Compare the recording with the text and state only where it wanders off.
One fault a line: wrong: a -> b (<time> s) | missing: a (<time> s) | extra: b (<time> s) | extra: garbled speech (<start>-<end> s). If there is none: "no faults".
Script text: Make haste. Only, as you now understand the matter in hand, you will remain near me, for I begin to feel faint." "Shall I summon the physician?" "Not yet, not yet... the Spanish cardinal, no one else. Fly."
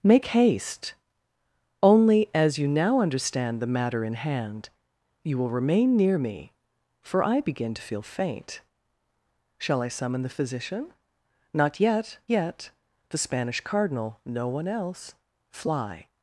missing: not (12.2 s)